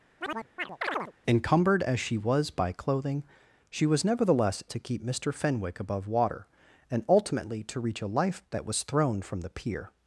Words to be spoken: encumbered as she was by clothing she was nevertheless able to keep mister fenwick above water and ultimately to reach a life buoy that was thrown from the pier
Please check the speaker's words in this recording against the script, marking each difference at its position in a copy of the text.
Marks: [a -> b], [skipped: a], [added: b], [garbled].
encumbered as she was by clothing she was nevertheless [skipped: able] to keep mister fenwick above water and ultimately to reach a life [skipped: buoy] that was thrown from the pier